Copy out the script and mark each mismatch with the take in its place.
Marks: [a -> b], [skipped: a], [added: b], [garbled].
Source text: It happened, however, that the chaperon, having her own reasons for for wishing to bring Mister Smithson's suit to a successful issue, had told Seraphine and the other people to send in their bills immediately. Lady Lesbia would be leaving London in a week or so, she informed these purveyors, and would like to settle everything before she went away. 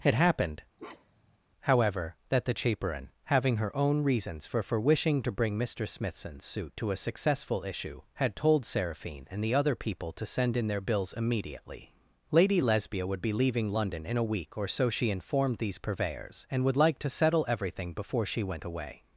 It happened, however, that the chaperon, having her own reasons for for wishing to bring Mister Smithson's suit to a successful issue, had told Seraphine and the other people to send in their bills immediately. Lady Lesbia would be leaving London in a week or so, she informed these purveyors, and would like to settle everything before she went away.